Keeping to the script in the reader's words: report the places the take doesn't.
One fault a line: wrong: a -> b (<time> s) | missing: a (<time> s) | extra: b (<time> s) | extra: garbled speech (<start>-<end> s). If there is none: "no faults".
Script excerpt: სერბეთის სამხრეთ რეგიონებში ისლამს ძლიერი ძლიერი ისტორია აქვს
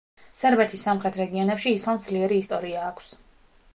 missing: ძლიერი (2.4 s)